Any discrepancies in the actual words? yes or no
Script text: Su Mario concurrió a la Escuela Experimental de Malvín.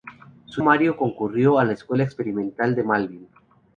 no